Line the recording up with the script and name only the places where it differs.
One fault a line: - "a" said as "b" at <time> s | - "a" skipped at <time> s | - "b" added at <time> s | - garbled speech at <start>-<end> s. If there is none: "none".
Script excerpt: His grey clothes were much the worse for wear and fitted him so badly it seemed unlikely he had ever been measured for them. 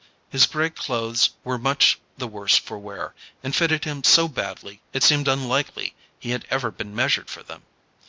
none